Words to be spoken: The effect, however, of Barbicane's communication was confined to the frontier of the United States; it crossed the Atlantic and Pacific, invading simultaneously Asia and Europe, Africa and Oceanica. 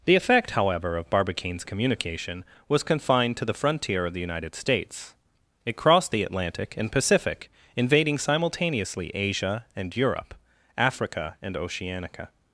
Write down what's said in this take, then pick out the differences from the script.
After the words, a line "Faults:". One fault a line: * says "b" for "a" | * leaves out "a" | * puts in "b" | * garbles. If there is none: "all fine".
The effect, however, of Barbicane's communication was confined to the frontier of the United States; it crossed the Atlantic and Pacific, invading simultaneously Asia and Europe, Africa and Oceanica.
Faults:
all fine